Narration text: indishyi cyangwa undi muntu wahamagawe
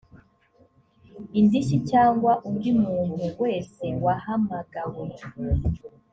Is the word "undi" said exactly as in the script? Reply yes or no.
yes